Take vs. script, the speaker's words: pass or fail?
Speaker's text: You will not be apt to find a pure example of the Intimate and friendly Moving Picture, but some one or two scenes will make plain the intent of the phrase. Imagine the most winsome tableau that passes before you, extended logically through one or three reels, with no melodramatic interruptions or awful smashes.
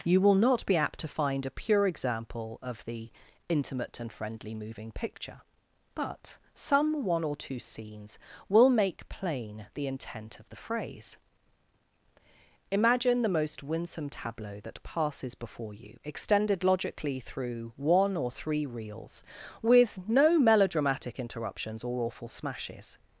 pass